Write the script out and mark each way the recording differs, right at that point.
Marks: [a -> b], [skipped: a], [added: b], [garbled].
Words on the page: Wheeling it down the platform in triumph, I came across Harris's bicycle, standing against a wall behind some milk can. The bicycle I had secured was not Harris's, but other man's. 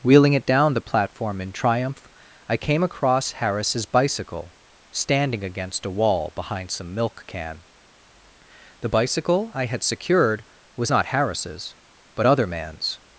Wheeling it down the platform in triumph, I came across Harris's bicycle, standing against a wall behind some milk can. The bicycle I had secured was not Harris's, but other man's.